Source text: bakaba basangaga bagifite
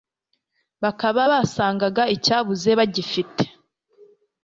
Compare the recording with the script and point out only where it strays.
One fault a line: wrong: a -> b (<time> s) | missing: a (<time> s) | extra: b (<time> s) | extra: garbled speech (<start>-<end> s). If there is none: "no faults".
extra: icyabuze (2.2 s)